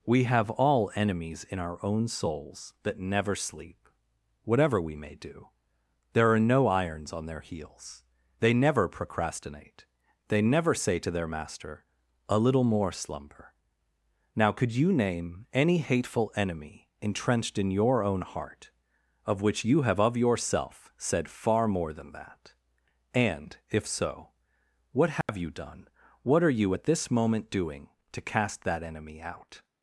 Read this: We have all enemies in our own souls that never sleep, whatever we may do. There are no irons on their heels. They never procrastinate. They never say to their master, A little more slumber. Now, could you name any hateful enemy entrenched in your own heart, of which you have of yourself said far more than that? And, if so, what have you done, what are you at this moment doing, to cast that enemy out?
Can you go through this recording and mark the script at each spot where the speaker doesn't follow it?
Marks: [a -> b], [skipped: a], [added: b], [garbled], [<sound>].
We have all enemies in our own souls that never sleep, whatever we may do. There are no irons on their heels. They never procrastinate. They never say to their master, A little more slumber. Now, could you name any hateful enemy entrenched in your own heart, of which you have of yourself said far more than that? And, if so, what have [dropout] you done, what are you at this moment doing, to cast that enemy out?